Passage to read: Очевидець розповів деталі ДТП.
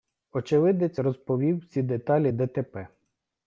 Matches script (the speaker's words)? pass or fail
fail